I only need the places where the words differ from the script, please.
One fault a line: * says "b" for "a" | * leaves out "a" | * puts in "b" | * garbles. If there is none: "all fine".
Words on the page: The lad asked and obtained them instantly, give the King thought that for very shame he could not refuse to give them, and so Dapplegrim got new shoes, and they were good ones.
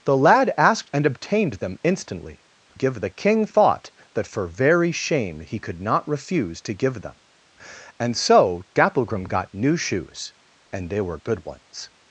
all fine